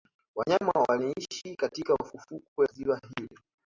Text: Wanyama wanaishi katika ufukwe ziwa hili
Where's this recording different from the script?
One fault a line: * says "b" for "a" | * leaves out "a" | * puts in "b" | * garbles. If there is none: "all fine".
all fine